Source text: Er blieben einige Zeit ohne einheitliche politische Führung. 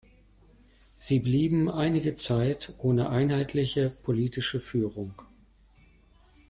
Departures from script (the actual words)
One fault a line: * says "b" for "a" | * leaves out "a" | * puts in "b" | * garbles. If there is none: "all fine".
* says "Sie" for "Er"